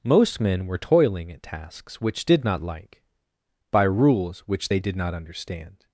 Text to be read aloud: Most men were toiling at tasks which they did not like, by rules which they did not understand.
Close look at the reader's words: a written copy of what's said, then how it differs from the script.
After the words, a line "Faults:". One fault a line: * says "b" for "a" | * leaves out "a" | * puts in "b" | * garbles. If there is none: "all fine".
Most men were toiling at tasks which did not like, by rules which they did not understand.
Faults:
* leaves out "they"